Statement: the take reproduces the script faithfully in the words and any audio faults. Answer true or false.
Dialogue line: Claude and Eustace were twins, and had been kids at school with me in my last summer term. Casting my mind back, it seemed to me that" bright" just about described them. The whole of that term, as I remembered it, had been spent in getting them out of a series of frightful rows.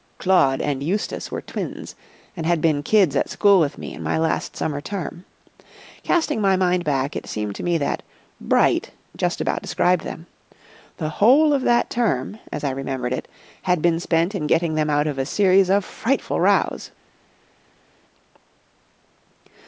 true